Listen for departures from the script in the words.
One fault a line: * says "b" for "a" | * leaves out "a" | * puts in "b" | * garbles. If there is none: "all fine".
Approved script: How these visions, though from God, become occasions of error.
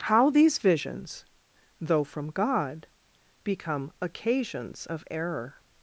all fine